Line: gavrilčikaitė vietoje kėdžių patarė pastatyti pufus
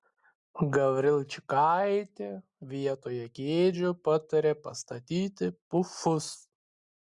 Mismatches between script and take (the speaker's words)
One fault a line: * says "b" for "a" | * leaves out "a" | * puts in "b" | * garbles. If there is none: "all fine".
all fine